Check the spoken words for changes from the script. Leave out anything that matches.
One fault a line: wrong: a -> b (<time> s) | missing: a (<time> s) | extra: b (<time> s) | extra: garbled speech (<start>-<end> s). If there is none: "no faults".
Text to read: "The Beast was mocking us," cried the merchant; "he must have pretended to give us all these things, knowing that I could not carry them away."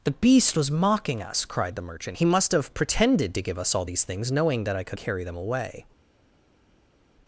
missing: not (5.0 s)